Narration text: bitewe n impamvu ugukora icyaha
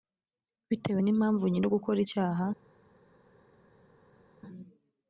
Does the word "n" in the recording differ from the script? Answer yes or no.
no